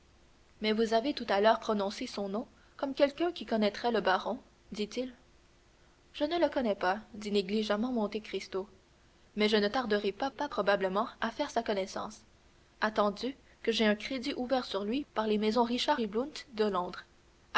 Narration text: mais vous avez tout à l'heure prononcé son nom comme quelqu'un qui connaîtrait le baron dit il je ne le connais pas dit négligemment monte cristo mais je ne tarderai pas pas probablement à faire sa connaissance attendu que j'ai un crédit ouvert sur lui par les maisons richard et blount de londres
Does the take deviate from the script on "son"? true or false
false